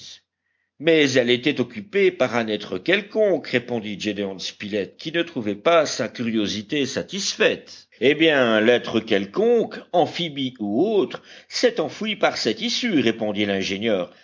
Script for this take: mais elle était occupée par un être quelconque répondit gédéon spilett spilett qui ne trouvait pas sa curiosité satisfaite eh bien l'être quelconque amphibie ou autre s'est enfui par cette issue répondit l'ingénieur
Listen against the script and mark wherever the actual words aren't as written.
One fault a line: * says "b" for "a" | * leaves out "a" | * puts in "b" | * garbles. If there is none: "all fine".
* leaves out "spilett"